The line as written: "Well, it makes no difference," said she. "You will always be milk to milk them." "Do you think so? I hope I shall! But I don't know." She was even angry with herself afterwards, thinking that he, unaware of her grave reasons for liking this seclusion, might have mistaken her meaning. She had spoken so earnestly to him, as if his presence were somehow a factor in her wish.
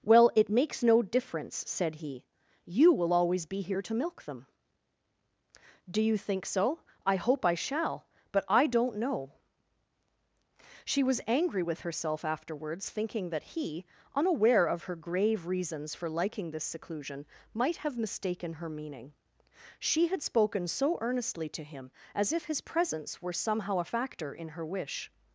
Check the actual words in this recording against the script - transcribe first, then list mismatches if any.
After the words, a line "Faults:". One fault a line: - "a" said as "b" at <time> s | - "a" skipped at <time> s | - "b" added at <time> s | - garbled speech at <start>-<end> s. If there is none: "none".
"Well, it makes no difference," said he. "You will always be here to milk them." "Do you think so? I hope I shall! But I don't know." She was angry with herself afterwards, thinking that he, unaware of her grave reasons for liking this seclusion, might have mistaken her meaning. She had spoken so earnestly to him, as if his presence were somehow a factor in her wish.
Faults:
- "she" said as "he" at 1.9 s
- "milk" said as "here" at 3.6 s
- "even" skipped at 11.2 s